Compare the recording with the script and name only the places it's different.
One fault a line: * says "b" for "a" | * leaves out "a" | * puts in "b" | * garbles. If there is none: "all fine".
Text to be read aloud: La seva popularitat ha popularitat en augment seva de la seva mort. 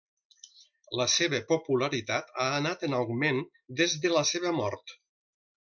* says "anat" for "popularitat"
* says "des" for "seva"